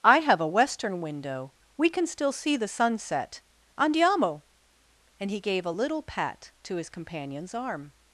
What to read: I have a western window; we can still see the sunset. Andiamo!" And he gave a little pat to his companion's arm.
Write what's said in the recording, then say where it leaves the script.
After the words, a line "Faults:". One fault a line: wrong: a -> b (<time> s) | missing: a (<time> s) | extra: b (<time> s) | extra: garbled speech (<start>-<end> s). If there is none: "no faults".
I have a western window; we can still see the sunset. Andiamo!" And he gave a little pat to his companion's arm.
Faults:
no faults